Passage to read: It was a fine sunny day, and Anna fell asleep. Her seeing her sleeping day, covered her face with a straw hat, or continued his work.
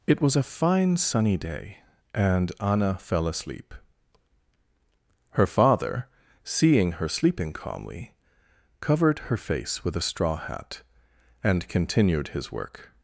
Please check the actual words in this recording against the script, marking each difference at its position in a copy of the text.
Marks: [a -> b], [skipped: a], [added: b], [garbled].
It was a fine sunny day, and Anna fell asleep. Her [added: father] seeing her sleeping [day, -> calmly] covered her face with a straw hat, [or -> and] continued his work.